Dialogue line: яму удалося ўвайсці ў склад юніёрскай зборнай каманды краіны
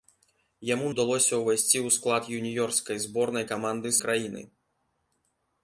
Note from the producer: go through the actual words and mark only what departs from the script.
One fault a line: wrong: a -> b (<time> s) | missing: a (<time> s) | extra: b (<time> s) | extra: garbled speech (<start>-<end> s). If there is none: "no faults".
no faults